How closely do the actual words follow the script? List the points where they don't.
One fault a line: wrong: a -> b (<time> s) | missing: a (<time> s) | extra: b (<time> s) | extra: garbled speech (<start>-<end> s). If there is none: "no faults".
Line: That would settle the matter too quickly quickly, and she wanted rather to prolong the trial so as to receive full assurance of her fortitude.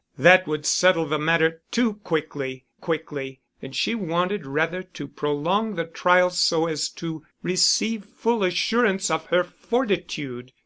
no faults